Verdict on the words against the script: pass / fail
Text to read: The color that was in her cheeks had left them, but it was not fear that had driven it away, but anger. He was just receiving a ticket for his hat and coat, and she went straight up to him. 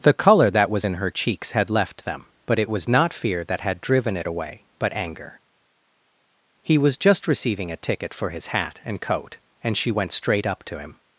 pass